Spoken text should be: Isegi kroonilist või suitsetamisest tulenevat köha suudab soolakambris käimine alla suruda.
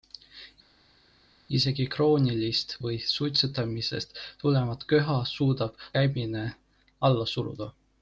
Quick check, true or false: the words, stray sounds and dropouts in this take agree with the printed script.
false